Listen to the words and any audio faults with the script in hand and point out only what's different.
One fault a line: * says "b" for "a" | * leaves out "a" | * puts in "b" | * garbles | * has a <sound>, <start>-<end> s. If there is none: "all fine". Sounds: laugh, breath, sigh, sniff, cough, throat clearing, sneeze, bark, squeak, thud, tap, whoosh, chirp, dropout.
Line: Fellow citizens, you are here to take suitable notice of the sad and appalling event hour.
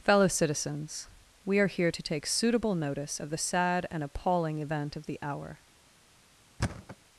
* says "we" for "you"
* puts in "of the"
* has a thud, 6.6-7.0 s